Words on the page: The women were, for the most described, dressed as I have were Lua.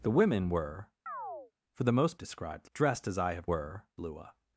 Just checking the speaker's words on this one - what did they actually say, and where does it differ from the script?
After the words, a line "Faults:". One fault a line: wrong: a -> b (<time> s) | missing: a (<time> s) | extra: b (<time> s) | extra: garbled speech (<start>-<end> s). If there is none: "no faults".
The women were, for the most described, dressed as I have were Lua.
Faults:
no faults